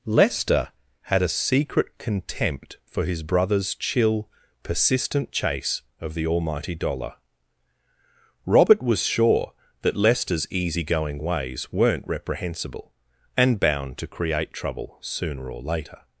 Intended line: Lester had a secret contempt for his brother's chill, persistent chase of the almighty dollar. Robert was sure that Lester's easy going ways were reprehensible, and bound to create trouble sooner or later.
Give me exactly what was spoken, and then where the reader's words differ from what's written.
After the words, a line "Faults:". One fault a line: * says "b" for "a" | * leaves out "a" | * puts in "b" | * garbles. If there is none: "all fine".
Lester had a secret contempt for his brother's chill, persistent chase of the almighty dollar. Robert was sure that Lester's easy going ways weren't reprehensible, and bound to create trouble sooner or later.
Faults:
* says "weren't" for "were"